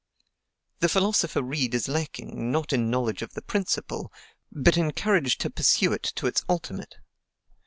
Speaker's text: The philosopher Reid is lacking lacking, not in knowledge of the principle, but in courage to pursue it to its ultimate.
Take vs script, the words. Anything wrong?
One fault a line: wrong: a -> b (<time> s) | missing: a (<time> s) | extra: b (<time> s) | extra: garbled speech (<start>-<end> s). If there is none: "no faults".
missing: lacking (2.5 s)